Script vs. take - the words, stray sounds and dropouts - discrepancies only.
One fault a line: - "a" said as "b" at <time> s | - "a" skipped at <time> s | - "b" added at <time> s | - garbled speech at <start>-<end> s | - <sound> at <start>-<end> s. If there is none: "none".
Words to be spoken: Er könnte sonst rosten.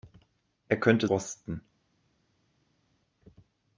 - "sonst" skipped at 1.1 s